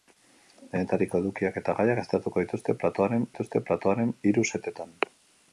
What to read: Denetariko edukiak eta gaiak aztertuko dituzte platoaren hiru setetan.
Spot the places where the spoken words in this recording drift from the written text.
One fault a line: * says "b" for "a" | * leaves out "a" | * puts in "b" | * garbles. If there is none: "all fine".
* puts in "dituzte platoaren"